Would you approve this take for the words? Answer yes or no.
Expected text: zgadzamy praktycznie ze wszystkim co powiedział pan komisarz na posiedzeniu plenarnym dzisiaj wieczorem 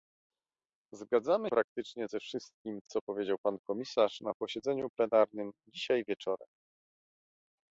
yes